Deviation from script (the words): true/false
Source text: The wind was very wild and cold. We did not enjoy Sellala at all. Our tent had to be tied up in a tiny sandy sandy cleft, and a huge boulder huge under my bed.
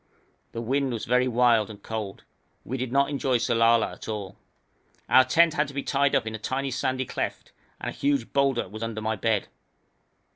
true